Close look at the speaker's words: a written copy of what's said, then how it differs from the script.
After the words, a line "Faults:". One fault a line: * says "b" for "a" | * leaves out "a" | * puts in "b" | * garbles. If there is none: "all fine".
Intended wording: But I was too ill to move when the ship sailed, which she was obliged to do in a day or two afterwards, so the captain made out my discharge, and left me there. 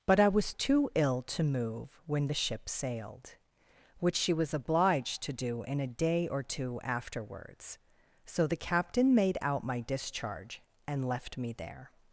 But I was too ill to move when the ship sailed, which she was obliged to do in a day or two afterwards, so the captain made out my discharge, and left me there.
Faults:
all fine